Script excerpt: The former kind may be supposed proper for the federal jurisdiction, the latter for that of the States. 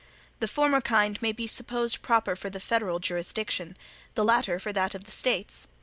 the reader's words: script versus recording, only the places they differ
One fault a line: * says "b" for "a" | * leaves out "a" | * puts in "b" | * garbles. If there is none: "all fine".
all fine